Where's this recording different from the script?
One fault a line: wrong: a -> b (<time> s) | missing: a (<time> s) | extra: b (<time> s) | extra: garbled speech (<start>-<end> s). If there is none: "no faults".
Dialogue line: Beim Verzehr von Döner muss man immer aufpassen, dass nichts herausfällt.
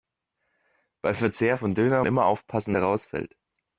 missing: muss man (2.0 s)
missing: dass nichts (2.7 s)